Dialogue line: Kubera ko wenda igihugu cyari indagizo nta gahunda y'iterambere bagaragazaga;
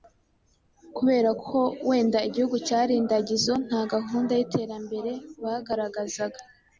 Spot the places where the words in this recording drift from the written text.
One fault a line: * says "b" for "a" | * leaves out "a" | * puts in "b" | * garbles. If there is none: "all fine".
all fine